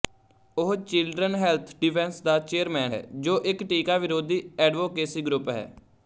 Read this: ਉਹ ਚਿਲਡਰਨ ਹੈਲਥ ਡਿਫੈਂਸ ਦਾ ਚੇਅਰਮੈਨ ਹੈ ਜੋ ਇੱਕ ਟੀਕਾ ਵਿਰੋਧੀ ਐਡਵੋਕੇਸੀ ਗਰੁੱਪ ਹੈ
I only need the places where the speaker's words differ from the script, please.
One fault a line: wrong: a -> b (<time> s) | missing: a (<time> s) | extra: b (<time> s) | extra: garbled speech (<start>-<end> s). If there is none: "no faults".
no faults